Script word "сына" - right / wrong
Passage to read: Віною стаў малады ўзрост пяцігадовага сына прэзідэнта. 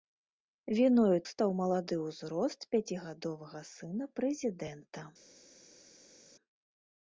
right